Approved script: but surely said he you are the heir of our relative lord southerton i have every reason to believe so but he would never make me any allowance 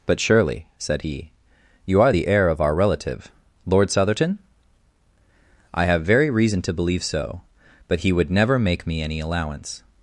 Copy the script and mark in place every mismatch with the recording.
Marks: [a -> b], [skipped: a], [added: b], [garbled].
but surely said he you are the heir of our relative lord southerton i have [every -> very] reason to believe so but he would never make me any allowance